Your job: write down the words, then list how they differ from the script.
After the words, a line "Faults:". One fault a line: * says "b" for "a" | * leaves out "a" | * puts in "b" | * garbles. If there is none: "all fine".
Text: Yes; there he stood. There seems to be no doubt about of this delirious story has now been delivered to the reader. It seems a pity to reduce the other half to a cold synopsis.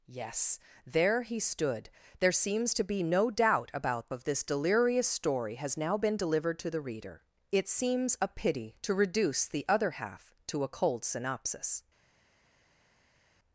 Yes; there he stood. There seems to be no doubt about of this delirious story has now been delivered to the reader. It seems a pity to reduce the other half to a cold synopsis.
Faults:
all fine